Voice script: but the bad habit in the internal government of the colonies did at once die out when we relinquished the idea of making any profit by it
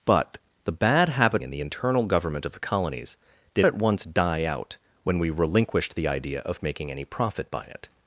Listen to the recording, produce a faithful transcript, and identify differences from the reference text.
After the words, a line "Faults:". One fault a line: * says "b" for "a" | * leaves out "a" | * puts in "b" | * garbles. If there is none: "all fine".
but the bad habit in the internal government of the colonies did at once die out when we relinquished the idea of making any profit by it
Faults:
all fine